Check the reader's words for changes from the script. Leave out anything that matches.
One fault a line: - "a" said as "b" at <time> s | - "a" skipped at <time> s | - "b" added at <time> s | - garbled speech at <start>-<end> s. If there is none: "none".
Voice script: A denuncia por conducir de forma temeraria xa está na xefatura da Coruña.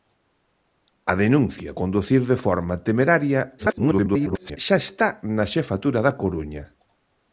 - "por" skipped at 1.7 s
- garbled speech at 3.6-4.6 s